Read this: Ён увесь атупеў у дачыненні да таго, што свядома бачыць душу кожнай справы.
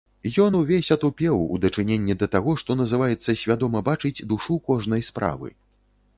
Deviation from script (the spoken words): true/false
true